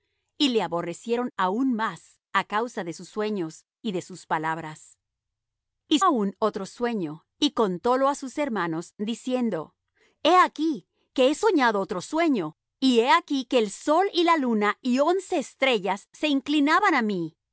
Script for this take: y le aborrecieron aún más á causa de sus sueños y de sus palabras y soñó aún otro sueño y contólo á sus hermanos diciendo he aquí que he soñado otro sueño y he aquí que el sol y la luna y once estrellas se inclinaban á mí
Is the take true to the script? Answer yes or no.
no